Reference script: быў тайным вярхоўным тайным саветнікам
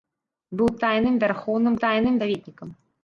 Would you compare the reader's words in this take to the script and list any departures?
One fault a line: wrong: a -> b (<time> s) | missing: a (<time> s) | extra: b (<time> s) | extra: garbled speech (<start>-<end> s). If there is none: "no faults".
no faults